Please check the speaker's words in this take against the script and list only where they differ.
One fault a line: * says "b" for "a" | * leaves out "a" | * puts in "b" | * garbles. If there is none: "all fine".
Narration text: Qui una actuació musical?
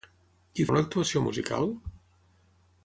all fine